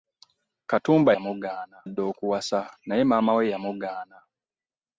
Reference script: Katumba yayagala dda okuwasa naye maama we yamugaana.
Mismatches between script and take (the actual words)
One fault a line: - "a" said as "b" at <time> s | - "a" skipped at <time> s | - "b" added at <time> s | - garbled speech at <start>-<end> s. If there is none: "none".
- "yayagala" said as "yamugaana" at 1.1 s